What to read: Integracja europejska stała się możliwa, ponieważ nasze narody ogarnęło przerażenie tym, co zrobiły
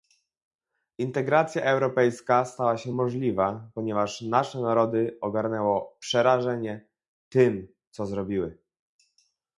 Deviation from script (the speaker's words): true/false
false